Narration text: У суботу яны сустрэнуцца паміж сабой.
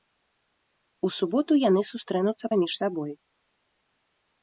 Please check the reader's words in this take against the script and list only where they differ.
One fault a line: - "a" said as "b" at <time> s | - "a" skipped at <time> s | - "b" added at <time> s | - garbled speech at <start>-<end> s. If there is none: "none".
none